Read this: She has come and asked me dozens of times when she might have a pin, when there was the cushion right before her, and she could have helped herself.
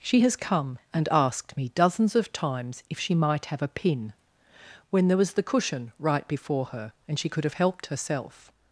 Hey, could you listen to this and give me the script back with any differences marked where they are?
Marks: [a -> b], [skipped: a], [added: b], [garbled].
She has come and asked me dozens of times [when -> if] she might have a pin, when there was the cushion right before her, and she could have helped herself.